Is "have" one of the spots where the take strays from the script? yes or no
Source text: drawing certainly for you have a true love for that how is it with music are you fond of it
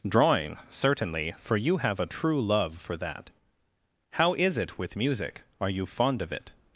no